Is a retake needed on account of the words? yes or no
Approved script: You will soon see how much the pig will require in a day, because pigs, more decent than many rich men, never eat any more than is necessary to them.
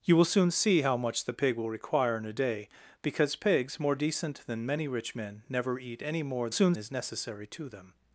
yes